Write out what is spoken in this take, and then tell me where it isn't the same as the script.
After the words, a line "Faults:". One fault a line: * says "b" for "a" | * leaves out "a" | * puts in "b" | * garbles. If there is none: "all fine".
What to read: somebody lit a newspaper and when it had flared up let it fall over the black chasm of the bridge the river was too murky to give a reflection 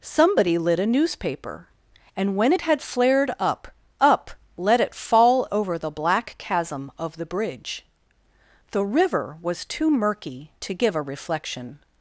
somebody lit a newspaper and when it had flared up up let it fall over the black chasm of the bridge the river was too murky to give a reflection
Faults:
* puts in "up"